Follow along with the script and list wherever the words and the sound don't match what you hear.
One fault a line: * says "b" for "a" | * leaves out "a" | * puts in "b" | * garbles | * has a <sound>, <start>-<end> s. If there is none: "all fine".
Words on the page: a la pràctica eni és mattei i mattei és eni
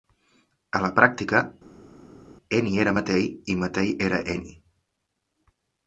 * says "era" for "és"
* says "era" for "és"